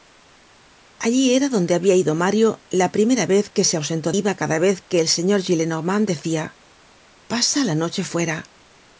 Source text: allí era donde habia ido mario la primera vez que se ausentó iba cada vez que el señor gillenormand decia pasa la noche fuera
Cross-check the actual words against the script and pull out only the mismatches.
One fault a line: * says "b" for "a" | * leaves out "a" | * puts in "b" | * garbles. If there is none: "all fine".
all fine